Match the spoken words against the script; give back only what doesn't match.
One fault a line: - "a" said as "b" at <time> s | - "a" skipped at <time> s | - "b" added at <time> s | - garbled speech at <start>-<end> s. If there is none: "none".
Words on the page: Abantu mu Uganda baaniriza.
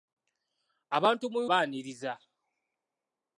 - "Uganda" skipped at 1.4 s